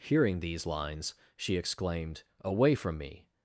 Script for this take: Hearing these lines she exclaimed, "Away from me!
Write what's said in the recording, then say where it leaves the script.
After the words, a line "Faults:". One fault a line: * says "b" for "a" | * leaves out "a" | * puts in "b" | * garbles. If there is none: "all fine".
Hearing these lines she exclaimed, "Away from me!
Faults:
all fine